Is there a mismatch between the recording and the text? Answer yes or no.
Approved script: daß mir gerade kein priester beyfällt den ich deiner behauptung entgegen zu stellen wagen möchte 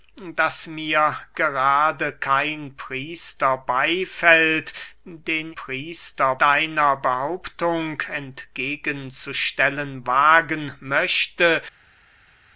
yes